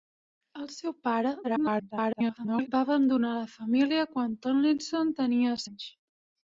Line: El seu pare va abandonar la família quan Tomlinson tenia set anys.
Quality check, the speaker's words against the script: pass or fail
fail